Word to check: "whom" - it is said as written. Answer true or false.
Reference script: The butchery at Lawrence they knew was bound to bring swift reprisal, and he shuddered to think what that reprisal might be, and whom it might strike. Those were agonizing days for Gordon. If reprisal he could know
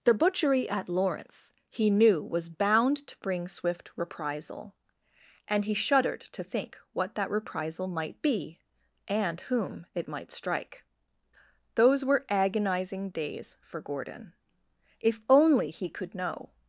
true